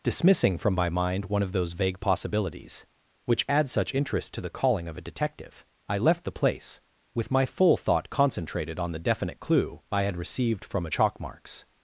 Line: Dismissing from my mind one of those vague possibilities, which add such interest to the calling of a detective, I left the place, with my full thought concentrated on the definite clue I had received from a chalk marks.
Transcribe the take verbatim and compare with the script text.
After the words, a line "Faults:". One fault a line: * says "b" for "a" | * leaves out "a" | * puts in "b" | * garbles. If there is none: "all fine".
Dismissing from my mind one of those vague possibilities, which add such interest to the calling of a detective, I left the place, with my full thought concentrated on the definite clue I had received from a chalk marks.
Faults:
all fine